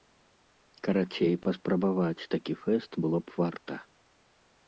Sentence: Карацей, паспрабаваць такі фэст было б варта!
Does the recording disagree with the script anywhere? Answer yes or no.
no